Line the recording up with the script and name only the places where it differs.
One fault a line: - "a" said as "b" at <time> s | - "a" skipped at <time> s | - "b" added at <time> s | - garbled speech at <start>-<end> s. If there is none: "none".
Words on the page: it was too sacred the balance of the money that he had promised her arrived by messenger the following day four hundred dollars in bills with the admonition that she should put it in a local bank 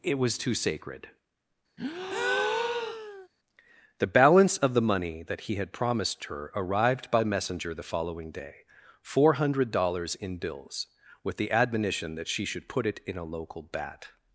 - "bank" said as "bat" at 13.6 s